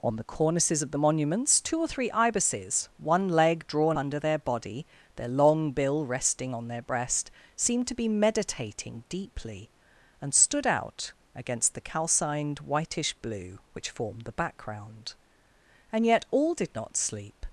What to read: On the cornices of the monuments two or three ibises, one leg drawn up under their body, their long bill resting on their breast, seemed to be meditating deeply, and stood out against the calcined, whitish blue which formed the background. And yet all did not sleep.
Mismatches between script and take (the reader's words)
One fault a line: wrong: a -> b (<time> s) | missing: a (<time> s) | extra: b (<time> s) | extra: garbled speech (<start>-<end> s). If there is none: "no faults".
missing: up (4.0 s)